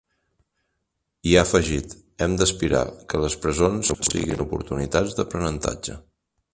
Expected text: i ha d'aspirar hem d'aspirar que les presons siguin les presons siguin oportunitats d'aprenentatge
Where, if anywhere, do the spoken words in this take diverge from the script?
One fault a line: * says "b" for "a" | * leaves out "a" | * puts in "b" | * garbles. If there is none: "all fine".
* says "afegit" for "d'aspirar"
* leaves out "les presons siguin"